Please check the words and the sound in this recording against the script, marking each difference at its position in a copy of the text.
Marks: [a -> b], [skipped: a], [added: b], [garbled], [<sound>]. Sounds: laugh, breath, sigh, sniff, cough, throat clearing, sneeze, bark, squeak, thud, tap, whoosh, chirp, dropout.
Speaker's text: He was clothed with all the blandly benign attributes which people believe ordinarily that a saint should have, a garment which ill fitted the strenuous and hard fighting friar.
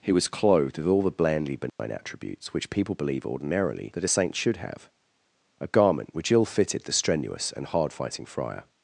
He was clothed with all the blandly benign [dropout] attributes which people believe ordinarily that a saint should have, a garment which ill fitted the strenuous and hard fighting friar.